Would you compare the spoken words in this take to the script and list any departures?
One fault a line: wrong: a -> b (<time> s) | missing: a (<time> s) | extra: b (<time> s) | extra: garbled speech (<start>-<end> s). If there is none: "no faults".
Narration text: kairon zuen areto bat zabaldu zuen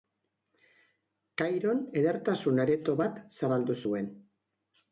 wrong: zuen -> edertasun (2.0 s)